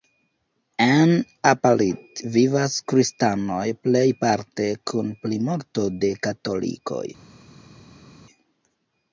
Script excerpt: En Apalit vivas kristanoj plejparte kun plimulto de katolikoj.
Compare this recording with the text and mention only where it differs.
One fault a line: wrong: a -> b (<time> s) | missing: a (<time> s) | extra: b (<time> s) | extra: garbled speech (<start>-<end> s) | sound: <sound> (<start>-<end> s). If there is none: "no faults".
no faults